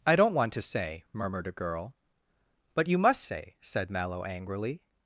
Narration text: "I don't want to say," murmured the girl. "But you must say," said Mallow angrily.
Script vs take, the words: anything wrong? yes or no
yes